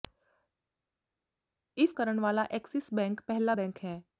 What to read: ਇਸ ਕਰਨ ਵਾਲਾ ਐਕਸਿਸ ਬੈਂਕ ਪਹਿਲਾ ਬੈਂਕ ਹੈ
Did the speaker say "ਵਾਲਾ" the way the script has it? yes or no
yes